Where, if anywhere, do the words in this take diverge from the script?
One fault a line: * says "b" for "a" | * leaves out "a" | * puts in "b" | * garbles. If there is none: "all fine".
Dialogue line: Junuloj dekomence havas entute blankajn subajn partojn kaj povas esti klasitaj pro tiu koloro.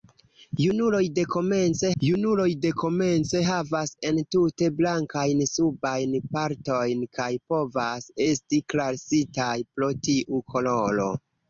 * puts in "junuloj dekomence"